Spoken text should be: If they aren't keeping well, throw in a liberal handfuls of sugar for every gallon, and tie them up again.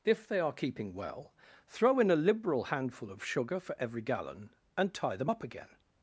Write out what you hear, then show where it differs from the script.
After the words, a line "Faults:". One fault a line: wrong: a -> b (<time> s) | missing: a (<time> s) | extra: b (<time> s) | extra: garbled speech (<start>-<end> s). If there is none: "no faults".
If they are keeping well, throw in a liberal handful of sugar for every gallon, and tie them up again.
Faults:
wrong: aren't -> are (0.4 s)
wrong: handfuls -> handful (2.6 s)